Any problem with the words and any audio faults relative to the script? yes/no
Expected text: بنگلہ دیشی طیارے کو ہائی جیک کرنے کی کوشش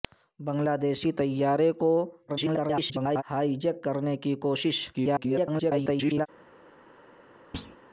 yes